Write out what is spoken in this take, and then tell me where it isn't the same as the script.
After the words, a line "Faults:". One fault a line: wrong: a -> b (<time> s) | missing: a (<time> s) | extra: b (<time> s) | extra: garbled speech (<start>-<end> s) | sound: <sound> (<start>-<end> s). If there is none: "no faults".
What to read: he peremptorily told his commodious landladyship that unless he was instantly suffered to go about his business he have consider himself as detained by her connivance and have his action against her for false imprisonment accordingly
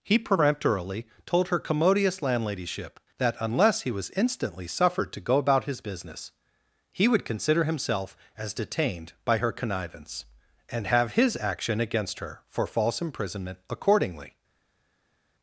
he peremptorily told her commodious landladyship that unless he was instantly suffered to go about his business he would consider himself as detained by her connivance and have his action against her for false imprisonment accordingly
Faults:
wrong: his -> her (1.5 s)
wrong: have -> would (7.1 s)